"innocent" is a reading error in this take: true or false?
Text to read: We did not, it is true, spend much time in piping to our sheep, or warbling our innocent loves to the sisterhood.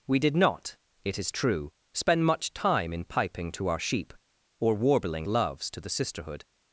true